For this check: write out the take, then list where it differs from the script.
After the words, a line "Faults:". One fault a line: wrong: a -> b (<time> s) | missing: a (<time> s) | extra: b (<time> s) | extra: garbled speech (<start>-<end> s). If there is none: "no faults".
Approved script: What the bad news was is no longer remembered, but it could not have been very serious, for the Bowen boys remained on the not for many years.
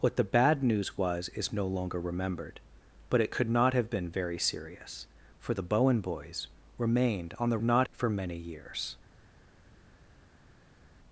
What the bad news was is no longer remembered, but it could not have been very serious, for the Bowen boys remained on the not for many years.
Faults:
no faults